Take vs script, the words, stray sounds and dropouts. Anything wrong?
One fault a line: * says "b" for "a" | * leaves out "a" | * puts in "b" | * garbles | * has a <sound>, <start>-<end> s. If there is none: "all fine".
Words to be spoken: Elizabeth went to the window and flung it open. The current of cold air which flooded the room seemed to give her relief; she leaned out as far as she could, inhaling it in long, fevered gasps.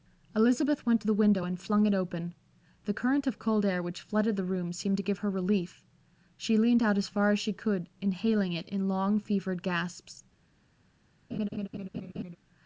* has a laugh, 11.3-12.4 s